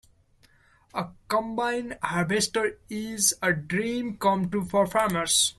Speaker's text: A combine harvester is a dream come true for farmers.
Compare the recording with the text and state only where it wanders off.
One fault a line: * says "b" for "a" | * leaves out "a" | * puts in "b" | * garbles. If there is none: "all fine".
all fine